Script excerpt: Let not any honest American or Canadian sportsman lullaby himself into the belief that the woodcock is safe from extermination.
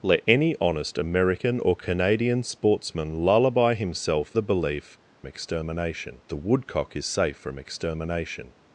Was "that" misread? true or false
true